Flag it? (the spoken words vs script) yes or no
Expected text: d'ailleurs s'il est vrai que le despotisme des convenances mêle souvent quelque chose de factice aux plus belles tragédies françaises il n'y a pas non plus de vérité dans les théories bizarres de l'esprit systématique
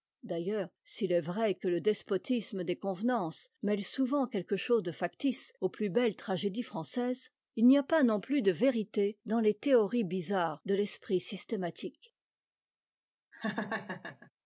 no